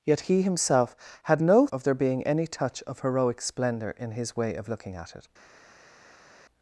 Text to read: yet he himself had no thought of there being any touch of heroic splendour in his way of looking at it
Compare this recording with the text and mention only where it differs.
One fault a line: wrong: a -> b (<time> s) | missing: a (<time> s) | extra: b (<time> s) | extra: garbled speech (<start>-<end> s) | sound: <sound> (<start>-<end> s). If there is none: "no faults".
missing: thought (1.7 s)